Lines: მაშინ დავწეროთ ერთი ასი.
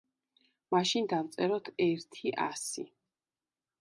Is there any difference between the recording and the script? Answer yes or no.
no